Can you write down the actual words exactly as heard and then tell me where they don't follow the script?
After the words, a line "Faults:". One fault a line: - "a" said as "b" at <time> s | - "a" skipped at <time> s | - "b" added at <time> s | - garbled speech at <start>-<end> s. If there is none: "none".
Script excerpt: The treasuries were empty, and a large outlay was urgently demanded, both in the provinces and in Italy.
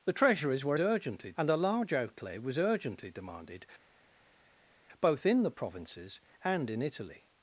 The treasuries were urgently, and a large outlay was urgently demanded, both in the provinces and in Italy.
Faults:
- "empty" said as "urgently" at 0.8 s